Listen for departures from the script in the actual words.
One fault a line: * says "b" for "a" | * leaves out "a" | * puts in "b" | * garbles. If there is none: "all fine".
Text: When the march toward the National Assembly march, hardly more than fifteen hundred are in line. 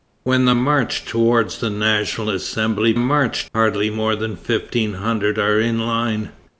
all fine